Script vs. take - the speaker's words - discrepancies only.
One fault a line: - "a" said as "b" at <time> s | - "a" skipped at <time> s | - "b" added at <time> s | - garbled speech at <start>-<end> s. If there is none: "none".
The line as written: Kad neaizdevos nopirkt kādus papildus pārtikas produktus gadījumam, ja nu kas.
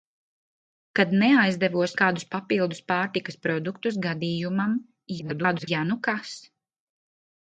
- "nopirkt" skipped at 1.9 s
- garbled speech at 5.2-5.7 s